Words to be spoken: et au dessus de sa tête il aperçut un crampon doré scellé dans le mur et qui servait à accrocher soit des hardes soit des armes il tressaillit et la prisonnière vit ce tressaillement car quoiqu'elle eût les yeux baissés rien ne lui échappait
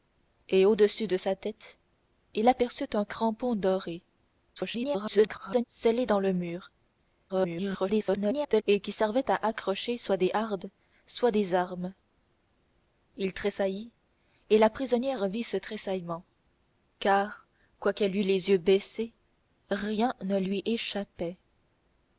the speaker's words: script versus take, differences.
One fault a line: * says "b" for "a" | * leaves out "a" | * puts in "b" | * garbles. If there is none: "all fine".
* garbles
* garbles